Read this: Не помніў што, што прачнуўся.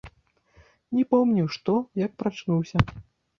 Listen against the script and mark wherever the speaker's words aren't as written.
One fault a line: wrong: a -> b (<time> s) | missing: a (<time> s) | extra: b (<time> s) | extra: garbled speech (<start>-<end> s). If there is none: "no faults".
wrong: што -> як (2.0 s)